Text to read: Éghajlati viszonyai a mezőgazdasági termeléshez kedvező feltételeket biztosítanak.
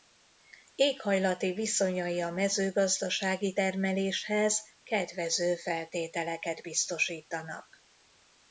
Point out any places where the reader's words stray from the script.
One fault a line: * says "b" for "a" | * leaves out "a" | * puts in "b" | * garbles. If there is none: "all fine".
all fine